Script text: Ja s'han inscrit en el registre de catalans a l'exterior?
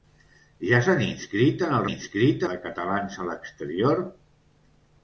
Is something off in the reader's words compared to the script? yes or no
yes